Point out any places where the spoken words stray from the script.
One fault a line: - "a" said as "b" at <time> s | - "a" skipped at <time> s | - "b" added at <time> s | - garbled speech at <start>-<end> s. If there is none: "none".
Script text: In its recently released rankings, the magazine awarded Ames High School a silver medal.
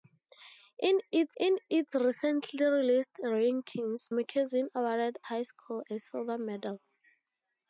- "in its" added at 1.4 s
- "the" skipped at 4.1 s
- "Ames" skipped at 5.2 s